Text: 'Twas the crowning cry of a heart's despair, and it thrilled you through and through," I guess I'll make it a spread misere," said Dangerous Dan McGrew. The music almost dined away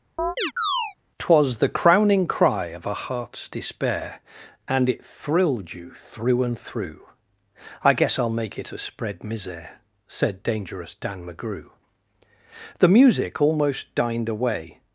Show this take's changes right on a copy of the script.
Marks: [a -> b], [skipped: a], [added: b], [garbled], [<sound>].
[chirp] 'Twas the crowning cry of a heart's despair, and it thrilled you through and through," I guess I'll make it a spread misere," said Dangerous Dan McGrew. The music almost dined away